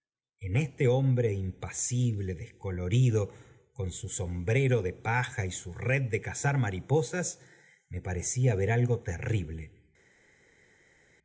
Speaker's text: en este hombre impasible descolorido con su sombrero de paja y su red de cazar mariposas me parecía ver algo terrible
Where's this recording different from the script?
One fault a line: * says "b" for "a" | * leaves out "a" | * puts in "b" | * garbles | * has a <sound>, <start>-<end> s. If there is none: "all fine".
all fine